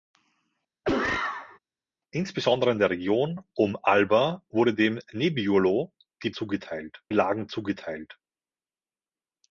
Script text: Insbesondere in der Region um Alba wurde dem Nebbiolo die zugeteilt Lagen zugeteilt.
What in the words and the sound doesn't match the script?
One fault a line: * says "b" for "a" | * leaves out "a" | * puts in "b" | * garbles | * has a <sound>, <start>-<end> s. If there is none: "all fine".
* has a cough, 0.8-1.6 s